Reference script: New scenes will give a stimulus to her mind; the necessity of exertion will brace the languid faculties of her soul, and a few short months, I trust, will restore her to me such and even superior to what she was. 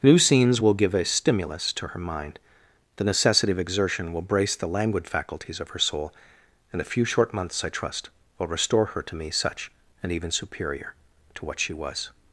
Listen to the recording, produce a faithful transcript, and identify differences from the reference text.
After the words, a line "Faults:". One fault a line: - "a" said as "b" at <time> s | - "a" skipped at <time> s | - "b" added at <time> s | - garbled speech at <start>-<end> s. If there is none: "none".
New scenes will give a stimulus to her mind; the necessity of exertion will brace the languid faculties of her soul, and a few short months, I trust, will restore her to me such and even superior to what she was.
Faults:
none